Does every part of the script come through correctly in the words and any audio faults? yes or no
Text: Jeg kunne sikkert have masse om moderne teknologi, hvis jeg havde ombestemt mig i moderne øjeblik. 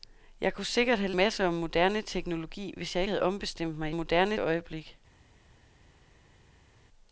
yes